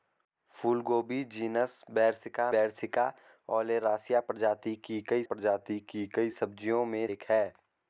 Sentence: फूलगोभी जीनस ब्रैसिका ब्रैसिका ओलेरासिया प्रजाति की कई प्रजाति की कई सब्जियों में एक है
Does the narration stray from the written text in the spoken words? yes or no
no